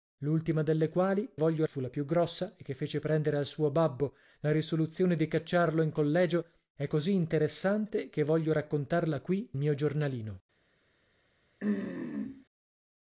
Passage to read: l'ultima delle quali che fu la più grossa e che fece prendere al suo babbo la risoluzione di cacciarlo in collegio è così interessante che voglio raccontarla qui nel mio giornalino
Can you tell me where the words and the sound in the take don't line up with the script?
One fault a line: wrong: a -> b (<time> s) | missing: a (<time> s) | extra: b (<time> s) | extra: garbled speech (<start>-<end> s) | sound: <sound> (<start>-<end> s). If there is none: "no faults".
wrong: che -> voglio (1.4 s)
missing: nel (9.5 s)
sound: throat clearing (11.6-12.4 s)